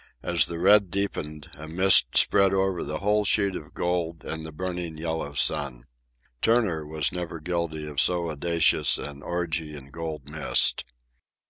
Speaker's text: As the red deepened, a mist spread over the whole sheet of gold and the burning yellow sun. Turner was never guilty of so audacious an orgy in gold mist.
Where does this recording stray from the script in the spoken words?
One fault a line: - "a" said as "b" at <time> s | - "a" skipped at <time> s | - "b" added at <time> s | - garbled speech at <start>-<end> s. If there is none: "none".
none